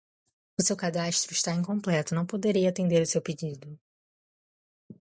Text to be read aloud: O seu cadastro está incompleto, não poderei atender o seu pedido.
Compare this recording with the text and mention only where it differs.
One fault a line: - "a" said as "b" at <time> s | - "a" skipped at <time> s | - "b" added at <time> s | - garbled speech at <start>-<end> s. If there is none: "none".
none